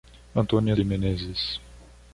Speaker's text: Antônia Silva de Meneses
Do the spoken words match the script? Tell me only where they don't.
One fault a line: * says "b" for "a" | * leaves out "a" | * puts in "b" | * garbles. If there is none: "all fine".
* leaves out "Silva"